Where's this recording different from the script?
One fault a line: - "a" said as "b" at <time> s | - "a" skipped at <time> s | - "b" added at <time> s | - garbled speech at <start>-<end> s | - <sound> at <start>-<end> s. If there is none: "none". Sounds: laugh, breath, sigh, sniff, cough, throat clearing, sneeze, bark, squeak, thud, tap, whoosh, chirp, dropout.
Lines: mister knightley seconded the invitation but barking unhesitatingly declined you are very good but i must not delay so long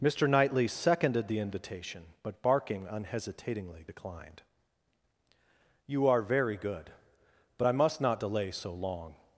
none